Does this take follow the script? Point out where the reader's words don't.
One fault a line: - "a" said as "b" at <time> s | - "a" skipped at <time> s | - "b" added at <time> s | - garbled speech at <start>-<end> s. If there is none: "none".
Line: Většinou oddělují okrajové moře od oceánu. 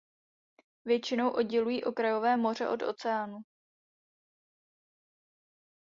none